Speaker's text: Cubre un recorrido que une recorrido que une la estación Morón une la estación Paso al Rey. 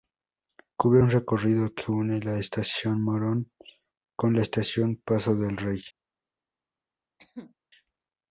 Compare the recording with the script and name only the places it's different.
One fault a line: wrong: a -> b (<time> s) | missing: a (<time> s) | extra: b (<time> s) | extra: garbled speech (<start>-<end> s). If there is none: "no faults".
missing: recorrido que une (2.2 s)
wrong: une -> con (4.1 s)
wrong: al -> del (5.3 s)